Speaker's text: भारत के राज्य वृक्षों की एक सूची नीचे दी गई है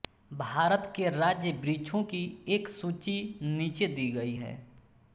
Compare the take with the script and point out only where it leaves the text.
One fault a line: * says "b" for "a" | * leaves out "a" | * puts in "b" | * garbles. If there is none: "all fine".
all fine